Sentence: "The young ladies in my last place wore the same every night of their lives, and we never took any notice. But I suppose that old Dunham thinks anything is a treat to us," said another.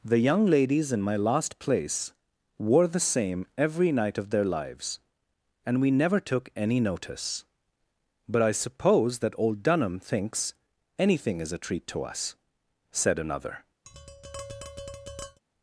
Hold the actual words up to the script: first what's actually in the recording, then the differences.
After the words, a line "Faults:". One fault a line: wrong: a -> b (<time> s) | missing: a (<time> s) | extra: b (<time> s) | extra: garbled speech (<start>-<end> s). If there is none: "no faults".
"The young ladies in my last place wore the same every night of their lives, and we never took any notice. But I suppose that old Dunham thinks anything is a treat to us," said another.
Faults:
no faults